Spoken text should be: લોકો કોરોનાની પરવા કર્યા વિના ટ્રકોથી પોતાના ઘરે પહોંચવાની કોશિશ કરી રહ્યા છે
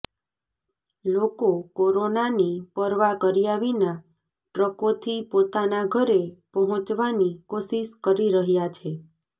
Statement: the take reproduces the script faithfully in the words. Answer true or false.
true